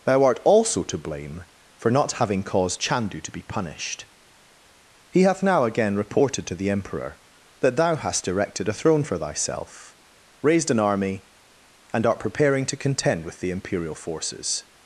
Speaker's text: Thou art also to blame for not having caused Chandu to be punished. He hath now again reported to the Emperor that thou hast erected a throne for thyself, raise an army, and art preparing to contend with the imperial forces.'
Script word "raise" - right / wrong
wrong